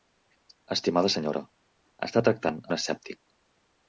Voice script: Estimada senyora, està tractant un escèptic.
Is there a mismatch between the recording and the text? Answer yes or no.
no